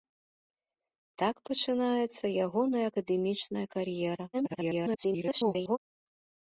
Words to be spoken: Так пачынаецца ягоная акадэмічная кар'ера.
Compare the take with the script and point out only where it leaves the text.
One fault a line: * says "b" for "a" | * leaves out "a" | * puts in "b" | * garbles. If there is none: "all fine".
* garbles